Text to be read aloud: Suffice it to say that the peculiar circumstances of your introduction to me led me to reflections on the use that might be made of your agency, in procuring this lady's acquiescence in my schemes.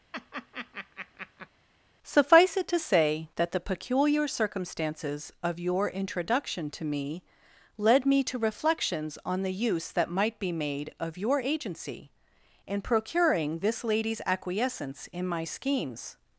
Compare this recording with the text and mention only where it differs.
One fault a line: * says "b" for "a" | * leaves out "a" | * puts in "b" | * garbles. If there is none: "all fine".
all fine